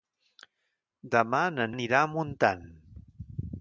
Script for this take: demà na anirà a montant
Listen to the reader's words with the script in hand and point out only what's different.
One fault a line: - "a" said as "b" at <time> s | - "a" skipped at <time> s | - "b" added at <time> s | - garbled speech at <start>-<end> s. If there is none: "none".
none